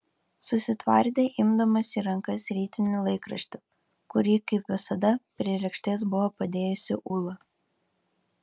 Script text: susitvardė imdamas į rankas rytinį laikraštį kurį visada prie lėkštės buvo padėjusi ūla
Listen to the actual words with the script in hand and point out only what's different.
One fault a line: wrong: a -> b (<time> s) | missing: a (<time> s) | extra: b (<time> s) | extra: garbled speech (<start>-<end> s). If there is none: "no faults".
extra: kaip (4.5 s)